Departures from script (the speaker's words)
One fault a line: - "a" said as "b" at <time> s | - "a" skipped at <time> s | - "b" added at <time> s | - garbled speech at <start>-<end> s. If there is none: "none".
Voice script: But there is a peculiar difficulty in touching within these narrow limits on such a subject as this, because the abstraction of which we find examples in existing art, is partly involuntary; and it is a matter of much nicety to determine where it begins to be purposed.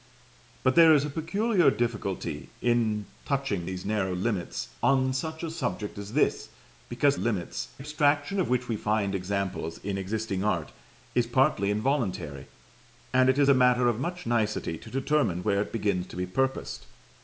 - "within" skipped at 3.7 s
- "the" said as "limits" at 7.2 s